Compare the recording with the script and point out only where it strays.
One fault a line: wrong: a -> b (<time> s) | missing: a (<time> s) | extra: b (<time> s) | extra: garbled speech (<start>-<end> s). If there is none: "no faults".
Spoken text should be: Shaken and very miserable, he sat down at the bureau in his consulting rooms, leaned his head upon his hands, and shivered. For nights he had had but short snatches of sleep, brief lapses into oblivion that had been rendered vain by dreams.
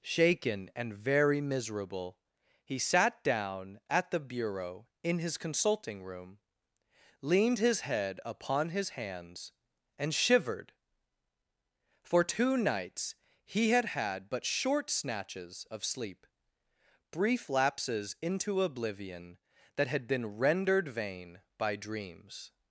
wrong: rooms -> room (6.0 s)
extra: two (12.2 s)